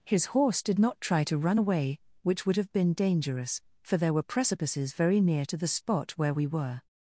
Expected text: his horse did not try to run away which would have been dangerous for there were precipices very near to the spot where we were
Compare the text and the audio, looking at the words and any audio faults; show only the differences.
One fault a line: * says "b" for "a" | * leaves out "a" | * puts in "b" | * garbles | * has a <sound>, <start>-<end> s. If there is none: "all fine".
all fine